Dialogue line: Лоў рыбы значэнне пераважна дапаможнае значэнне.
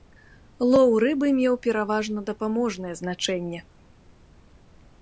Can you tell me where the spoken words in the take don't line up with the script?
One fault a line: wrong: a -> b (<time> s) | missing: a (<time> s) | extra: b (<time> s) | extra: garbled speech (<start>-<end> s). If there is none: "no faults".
wrong: значэнне -> меў (1.4 s)